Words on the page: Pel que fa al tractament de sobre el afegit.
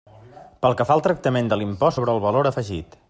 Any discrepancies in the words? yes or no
yes